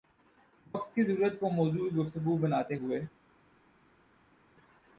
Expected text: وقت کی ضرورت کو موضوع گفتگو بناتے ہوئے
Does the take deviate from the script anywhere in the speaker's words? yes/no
no